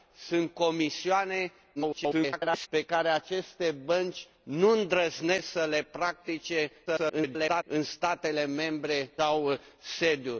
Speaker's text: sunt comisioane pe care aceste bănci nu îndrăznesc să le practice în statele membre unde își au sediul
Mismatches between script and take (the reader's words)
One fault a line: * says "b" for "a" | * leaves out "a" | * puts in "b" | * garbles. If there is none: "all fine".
* garbles
* garbles
* leaves out "unde își"